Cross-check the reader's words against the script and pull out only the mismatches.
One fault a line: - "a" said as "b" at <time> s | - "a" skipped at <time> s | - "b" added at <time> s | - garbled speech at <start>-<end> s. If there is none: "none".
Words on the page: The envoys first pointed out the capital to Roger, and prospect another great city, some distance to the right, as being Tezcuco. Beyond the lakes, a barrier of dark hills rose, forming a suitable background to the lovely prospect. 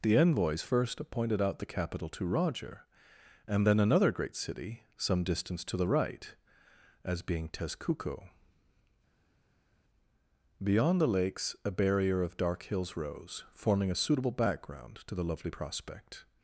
- "prospect" said as "then" at 3.7 s